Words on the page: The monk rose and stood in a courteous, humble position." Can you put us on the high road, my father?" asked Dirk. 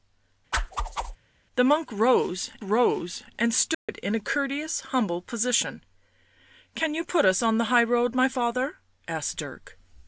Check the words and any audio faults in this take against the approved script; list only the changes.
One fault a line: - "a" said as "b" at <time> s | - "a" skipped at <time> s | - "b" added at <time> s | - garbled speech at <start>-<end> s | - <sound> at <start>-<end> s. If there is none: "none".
- whoosh at 0.5-1.2 s
- "rose" added at 2.6 s
- dropout at 3.7-3.9 s